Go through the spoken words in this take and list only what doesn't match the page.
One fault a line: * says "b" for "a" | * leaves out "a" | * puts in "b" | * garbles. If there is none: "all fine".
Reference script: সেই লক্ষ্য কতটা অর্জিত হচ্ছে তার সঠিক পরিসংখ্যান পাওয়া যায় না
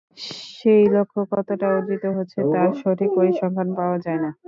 all fine